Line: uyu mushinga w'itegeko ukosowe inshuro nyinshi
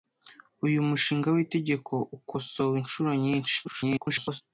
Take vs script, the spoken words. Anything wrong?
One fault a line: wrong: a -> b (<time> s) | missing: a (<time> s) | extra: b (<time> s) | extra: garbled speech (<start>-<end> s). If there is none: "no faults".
extra: garbled speech (3.6-4.4 s)